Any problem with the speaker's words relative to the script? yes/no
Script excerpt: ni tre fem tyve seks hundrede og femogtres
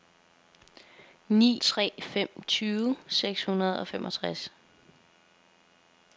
no